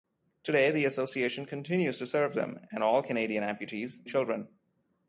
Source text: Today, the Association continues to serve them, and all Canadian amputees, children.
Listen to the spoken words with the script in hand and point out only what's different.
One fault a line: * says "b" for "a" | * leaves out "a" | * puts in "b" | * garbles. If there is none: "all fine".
all fine